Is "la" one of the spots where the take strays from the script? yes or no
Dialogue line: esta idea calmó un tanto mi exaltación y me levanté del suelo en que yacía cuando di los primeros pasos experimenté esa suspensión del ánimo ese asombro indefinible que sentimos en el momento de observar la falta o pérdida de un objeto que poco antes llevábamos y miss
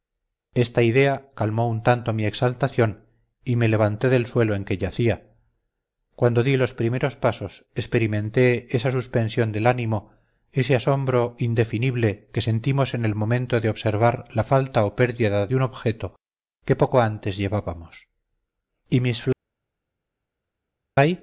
no